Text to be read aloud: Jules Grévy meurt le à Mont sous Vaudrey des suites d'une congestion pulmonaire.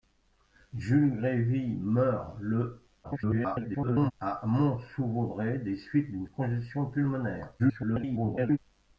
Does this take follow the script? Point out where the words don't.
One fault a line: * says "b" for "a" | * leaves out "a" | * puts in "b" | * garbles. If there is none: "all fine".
* garbles
* garbles